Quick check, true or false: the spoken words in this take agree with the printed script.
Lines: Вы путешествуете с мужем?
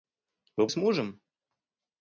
false